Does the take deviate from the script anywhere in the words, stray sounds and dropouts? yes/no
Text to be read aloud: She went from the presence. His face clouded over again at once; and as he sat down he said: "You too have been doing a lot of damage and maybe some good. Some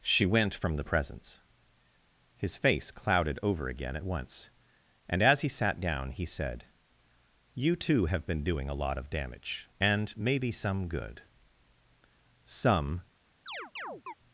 yes